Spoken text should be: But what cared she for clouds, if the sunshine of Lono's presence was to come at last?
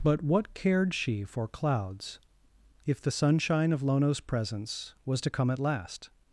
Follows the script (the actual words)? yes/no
yes